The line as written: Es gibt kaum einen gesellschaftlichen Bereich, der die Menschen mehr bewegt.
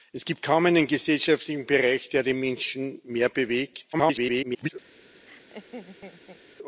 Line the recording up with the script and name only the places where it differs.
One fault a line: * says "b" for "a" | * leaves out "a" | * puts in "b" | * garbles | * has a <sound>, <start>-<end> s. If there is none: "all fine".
* garbles
* has a laugh, 5.3-6.4 s